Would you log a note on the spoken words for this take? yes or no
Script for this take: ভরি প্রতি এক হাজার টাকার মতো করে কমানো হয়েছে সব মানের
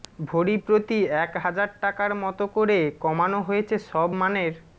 no